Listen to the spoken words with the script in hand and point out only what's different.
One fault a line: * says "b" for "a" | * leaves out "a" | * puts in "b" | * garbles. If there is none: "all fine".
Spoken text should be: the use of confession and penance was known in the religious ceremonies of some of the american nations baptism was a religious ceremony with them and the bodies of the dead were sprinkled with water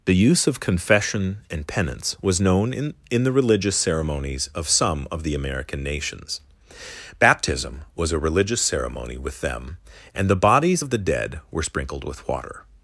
* puts in "in"